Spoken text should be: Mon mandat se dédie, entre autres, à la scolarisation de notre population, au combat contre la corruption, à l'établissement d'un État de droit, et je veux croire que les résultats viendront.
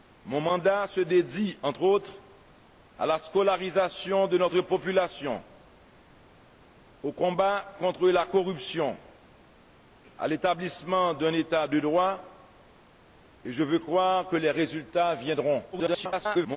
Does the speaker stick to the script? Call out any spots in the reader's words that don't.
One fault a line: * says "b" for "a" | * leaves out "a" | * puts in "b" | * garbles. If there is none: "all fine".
* garbles